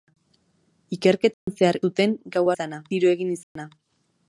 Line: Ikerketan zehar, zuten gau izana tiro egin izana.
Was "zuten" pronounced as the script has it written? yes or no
yes